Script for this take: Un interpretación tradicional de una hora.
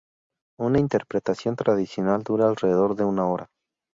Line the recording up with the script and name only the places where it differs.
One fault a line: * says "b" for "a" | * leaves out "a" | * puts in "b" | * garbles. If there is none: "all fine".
* says "Una" for "Un"
* puts in "dura alrededor"